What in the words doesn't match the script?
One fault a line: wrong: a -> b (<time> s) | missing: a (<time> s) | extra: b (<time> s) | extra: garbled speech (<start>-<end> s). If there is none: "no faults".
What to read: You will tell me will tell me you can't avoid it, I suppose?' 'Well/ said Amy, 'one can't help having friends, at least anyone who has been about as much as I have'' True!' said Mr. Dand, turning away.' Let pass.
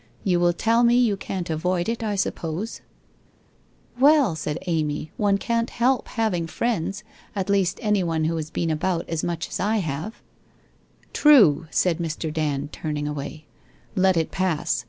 missing: will tell me (0.9 s)
extra: it (14.2 s)